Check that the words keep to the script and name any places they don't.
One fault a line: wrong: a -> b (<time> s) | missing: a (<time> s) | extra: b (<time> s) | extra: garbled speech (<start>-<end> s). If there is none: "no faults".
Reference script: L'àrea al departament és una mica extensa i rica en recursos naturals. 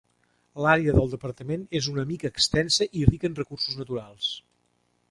wrong: al -> del (0.9 s)